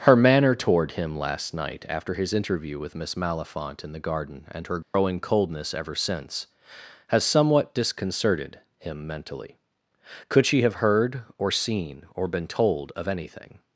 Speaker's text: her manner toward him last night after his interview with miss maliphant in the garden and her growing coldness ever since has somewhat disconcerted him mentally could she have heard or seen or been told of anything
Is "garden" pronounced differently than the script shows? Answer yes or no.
no